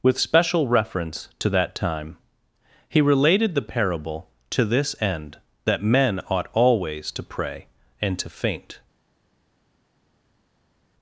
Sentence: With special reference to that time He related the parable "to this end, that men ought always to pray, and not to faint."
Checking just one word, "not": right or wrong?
wrong